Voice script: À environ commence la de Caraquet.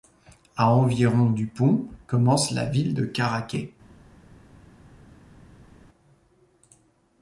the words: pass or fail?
fail